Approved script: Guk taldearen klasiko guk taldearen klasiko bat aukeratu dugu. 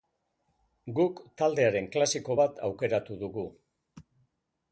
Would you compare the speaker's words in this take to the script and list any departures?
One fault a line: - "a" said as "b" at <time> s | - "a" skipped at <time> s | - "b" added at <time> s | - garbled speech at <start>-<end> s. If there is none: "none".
- "guk taldearen klasiko" skipped at 2.4 s